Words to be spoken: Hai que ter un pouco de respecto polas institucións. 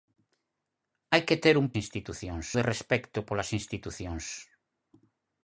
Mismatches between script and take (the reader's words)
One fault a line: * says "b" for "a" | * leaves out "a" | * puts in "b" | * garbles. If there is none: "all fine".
* says "institucións" for "pouco"